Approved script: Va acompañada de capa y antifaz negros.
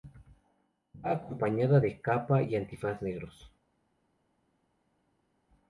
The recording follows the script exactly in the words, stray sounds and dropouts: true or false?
true